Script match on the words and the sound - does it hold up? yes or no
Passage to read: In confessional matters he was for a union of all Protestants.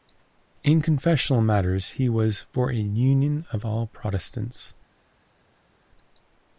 yes